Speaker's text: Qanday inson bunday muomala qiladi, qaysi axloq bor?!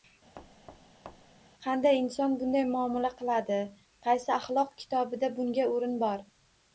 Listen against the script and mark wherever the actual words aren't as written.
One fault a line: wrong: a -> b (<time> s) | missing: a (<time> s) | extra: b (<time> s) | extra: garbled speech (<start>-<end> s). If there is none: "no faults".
extra: kitobida bunga o'rin (4.8 s)